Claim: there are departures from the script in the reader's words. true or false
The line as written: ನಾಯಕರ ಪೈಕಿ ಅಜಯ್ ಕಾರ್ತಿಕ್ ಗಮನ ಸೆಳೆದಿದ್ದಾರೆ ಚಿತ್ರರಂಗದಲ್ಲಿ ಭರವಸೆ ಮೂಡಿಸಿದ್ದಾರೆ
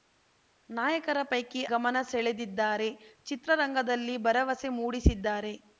true